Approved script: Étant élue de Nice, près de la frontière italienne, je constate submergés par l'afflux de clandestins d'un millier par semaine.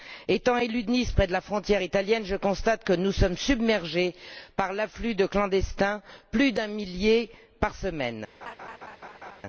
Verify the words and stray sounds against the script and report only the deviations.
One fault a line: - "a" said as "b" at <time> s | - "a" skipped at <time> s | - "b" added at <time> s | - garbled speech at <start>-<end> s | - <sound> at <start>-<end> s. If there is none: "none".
- "que nous sommes" added at 2.8 s
- "plus" added at 6.3 s
- laugh at 8.4-9.4 s